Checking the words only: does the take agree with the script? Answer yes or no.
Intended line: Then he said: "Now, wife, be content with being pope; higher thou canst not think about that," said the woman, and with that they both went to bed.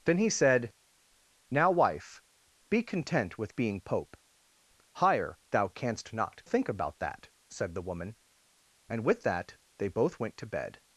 yes